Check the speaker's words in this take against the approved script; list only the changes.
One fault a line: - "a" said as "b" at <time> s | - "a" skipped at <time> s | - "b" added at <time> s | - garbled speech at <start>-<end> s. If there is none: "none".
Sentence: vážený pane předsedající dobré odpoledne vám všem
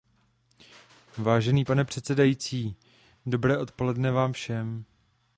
none